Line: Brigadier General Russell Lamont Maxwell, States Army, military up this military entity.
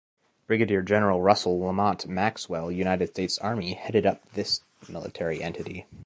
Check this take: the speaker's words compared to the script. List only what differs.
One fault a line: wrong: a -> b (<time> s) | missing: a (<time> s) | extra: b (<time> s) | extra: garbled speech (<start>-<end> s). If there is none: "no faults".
extra: United (2.7 s)
wrong: military -> headed (3.8 s)